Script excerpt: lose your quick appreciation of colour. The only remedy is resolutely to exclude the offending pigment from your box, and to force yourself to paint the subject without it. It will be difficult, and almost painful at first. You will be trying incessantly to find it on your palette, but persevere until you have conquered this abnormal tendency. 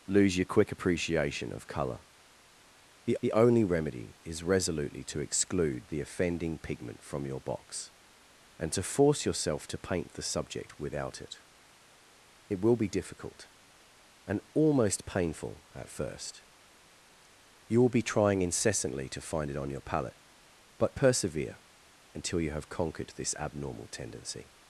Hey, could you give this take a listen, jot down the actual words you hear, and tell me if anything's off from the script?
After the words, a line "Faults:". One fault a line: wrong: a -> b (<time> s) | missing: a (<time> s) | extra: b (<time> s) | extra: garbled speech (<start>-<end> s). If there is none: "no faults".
lose your quick appreciation of colour. The the only remedy is resolutely to exclude the offending pigment from your box, and to force yourself to paint the subject without it. It will be difficult, and almost painful at first. You will be trying incessantly to find it on your palette, but persevere until you have conquered this abnormal tendency.
Faults:
extra: the (3.2 s)